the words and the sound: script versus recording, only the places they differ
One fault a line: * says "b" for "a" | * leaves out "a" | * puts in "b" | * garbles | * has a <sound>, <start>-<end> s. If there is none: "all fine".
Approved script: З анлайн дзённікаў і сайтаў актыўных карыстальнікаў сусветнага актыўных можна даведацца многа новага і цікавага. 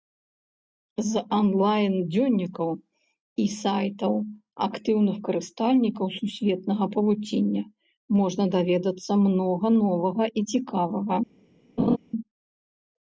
* says "павуціння" for "актыўных"
* has a laugh, 11.8-12.0 s